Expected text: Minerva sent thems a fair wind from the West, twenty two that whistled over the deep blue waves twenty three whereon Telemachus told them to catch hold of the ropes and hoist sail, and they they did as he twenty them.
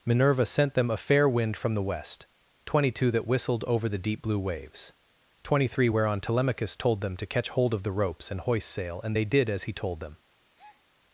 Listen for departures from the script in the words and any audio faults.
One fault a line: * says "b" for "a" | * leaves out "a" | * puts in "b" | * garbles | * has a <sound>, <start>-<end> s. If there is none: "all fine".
* says "them" for "thems"
* leaves out "they"
* says "told" for "twenty"
* has a breath, 10.5-10.8 s